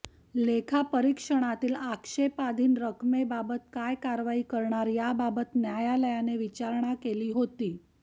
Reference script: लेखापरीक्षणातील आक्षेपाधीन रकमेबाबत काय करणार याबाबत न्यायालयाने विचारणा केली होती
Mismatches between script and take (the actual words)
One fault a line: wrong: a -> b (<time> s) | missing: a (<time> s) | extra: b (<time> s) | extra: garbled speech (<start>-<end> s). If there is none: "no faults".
extra: कारवाई (4.0 s)